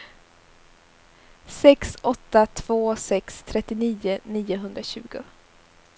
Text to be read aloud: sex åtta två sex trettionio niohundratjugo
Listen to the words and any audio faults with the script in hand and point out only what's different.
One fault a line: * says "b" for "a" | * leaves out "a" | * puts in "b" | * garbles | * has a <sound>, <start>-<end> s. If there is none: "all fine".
all fine